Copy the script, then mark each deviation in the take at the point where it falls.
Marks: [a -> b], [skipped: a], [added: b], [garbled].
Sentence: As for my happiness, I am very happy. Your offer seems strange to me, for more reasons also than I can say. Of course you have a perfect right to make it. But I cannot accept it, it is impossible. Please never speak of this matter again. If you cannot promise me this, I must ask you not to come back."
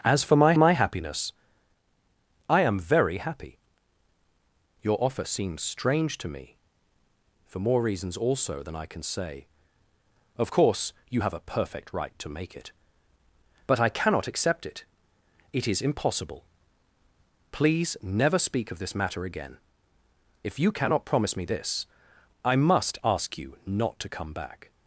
As for my [added: my] happiness, I am very happy. Your offer seems strange to me, for more reasons also than I can say. Of course you have a perfect right to make it. But I cannot accept it, it is impossible. Please never speak of this matter again. If you cannot promise me this, I must ask you not to come back."